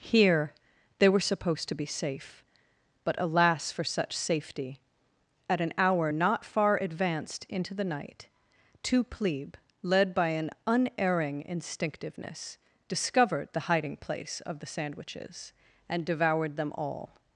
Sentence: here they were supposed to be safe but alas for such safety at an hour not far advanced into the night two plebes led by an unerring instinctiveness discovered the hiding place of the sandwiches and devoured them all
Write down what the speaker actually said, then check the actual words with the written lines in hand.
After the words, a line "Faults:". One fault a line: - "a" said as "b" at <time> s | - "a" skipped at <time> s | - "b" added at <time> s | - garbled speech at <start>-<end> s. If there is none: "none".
here they were supposed to be safe but alas for such safety at an hour not far advanced into the night two plebe led by an unerring instinctiveness discovered the hiding place of the sandwiches and devoured them all
Faults:
- "plebes" said as "plebe" at 9.0 s